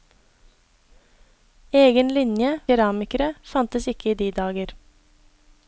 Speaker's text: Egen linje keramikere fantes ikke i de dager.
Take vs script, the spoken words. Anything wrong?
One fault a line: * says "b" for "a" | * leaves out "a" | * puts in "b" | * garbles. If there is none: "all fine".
all fine